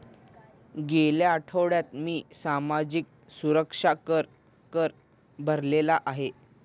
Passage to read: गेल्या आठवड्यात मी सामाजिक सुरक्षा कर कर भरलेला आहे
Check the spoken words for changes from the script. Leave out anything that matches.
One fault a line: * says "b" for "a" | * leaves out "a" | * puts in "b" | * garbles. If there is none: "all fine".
all fine